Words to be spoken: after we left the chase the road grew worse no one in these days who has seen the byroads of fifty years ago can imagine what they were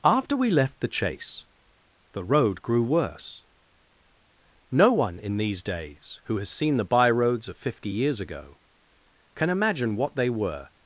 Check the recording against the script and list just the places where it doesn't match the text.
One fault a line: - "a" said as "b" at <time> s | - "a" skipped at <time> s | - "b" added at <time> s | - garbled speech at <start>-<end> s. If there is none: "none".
none